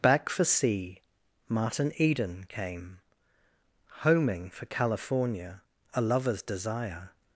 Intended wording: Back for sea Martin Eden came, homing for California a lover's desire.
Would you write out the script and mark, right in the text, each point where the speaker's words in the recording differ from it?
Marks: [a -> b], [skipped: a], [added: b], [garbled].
Back for sea Martin Eden came, homing for California a lover's desire.